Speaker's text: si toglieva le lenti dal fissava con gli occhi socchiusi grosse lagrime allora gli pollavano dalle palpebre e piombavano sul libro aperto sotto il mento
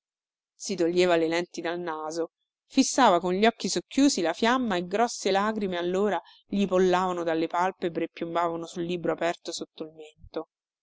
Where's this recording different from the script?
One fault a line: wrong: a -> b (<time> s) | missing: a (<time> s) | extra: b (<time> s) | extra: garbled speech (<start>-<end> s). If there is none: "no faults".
extra: naso (1.8 s)
extra: la fiamma e (4.2 s)